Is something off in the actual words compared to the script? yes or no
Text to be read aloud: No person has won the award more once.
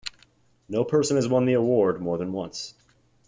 yes